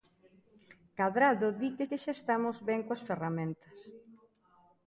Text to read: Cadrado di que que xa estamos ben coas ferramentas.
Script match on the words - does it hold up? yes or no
yes